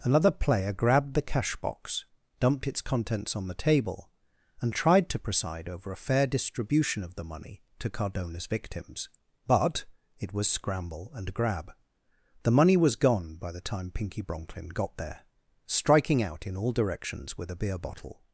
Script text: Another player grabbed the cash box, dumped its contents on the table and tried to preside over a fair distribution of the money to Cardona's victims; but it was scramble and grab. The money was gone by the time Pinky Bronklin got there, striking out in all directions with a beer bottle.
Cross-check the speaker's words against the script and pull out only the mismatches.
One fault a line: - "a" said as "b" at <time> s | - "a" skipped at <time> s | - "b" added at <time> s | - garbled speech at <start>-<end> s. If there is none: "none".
none